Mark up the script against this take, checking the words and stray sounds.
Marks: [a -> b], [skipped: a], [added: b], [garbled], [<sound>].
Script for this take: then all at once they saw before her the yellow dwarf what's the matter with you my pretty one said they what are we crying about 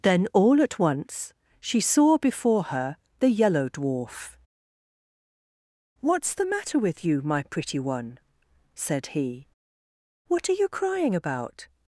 then all at once [they -> she] saw before her the yellow dwarf what's the matter with you my pretty one said [they -> he] what are [we -> you] crying about